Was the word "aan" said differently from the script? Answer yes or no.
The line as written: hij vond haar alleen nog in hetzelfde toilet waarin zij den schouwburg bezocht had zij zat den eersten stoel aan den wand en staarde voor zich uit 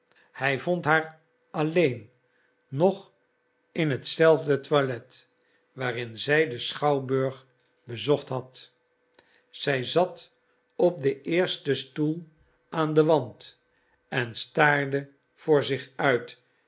no